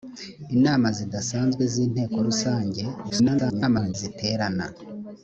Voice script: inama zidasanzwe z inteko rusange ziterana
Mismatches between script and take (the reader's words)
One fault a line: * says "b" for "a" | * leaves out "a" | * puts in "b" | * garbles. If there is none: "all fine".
* garbles